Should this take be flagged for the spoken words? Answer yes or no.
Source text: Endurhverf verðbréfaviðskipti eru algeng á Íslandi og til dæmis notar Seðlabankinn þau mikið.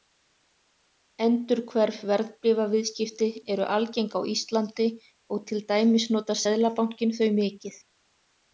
no